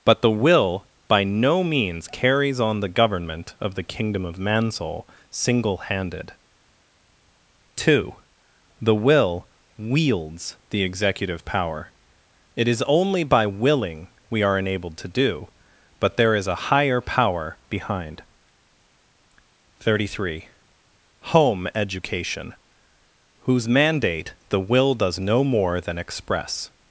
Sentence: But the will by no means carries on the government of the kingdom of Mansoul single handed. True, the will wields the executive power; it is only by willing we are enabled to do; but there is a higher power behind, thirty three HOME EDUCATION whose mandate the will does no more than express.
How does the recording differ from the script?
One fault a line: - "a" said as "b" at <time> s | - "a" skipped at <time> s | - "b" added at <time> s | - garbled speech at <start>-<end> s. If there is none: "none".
- "True" said as "Two" at 7.8 s